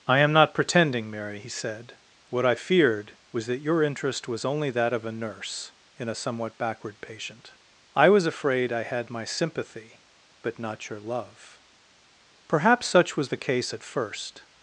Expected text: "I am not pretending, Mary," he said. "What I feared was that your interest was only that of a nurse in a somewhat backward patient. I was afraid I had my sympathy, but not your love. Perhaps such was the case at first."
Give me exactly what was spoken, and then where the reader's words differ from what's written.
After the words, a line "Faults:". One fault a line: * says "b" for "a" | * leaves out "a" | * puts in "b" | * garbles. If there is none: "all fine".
"I am not pretending, Mary," he said. "What I feared was that your interest was only that of a nurse in a somewhat backward patient. I was afraid I had my sympathy, but not your love. Perhaps such was the case at first."
Faults:
all fine